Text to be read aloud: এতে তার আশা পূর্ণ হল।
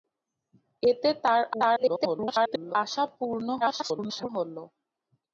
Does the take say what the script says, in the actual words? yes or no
no